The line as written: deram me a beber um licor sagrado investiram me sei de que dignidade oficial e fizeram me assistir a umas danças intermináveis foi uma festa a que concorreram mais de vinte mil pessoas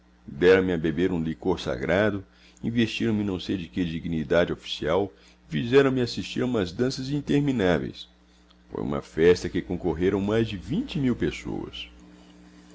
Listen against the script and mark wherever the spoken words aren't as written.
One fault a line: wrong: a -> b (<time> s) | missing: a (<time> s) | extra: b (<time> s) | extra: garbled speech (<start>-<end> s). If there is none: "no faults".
extra: não (3.2 s)